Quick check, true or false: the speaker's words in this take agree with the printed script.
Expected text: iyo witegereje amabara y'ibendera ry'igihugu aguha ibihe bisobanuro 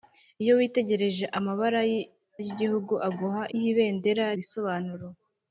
false